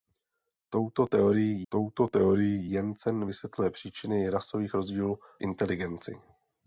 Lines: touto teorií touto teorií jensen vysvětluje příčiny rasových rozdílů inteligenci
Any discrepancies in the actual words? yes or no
no